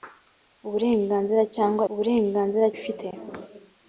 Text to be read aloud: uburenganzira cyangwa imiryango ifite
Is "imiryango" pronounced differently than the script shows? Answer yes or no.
yes